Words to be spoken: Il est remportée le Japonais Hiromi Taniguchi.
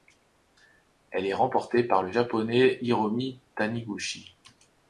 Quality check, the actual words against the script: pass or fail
fail